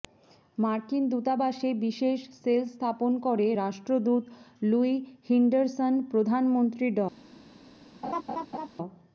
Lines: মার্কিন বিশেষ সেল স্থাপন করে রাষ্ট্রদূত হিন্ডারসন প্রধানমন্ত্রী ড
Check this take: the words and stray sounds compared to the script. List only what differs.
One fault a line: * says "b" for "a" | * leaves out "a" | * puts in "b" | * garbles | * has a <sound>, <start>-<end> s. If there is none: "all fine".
* puts in "দূতাবাসে"
* puts in "লুই"
* has a laugh, 8.0-8.7 s